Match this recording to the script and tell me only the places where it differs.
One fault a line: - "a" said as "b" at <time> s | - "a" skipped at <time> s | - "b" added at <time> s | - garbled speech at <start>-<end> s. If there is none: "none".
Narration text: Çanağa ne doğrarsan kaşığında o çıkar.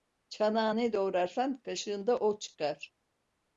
none